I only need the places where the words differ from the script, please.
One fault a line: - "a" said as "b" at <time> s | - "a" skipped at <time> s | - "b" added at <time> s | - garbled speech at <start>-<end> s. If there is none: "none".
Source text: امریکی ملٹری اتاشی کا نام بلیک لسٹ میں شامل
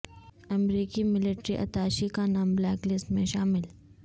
none